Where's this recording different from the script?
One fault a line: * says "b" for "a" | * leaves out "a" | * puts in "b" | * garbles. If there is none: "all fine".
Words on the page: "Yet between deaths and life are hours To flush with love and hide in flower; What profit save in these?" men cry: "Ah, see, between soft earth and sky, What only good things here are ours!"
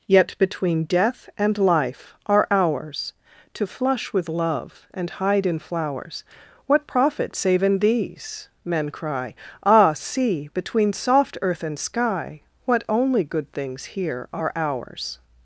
* says "death" for "deaths"
* says "flowers" for "flower"